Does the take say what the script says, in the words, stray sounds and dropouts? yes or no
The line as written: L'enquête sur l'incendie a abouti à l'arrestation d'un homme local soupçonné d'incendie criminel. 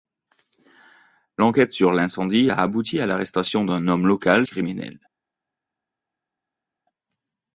no